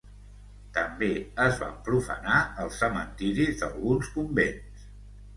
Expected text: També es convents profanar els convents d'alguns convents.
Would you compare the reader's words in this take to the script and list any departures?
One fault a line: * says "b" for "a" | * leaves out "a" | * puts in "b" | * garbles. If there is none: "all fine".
* says "van" for "convents"
* says "cementiris" for "convents"